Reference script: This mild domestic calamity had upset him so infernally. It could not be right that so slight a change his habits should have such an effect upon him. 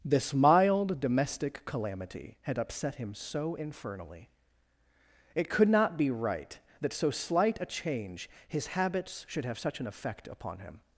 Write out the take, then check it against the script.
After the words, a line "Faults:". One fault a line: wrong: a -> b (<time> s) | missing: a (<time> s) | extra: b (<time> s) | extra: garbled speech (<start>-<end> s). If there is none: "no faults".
This mild domestic calamity had upset him so infernally. It could not be right that so slight a change his habits should have such an effect upon him.
Faults:
no faults